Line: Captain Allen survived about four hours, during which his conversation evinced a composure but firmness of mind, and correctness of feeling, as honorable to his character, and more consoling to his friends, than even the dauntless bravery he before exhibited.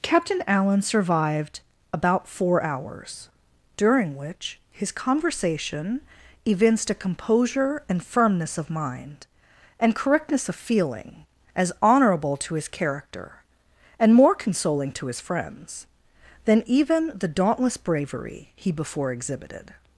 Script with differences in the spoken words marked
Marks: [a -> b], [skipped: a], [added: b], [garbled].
Captain Allen survived about four hours, during which his conversation evinced a composure [but -> and] firmness of mind, and correctness of feeling, as honorable to his character, and more consoling to his friends, than even the dauntless bravery he before exhibited.